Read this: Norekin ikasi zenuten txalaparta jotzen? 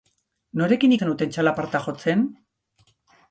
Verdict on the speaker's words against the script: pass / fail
fail